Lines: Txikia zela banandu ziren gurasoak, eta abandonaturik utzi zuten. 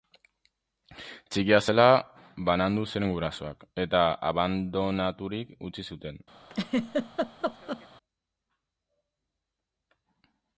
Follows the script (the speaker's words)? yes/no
yes